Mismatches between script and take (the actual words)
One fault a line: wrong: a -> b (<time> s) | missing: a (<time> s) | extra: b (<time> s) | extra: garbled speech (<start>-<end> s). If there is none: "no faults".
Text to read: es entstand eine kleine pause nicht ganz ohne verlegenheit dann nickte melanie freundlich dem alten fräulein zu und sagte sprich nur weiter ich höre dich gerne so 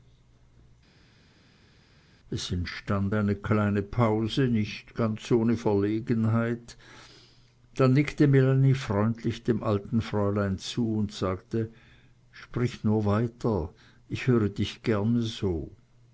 no faults